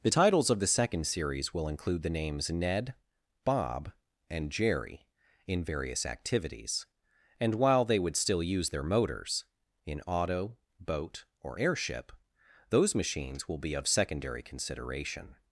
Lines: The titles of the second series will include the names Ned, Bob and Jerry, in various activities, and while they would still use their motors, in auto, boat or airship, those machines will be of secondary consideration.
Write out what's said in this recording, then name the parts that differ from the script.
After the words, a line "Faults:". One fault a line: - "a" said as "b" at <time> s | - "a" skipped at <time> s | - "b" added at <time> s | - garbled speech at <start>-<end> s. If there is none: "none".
The titles of the second series will include the names Ned, Bob and Jerry, in various activities, and while they would still use their motors, in auto, boat or airship, those machines will be of secondary consideration.
Faults:
none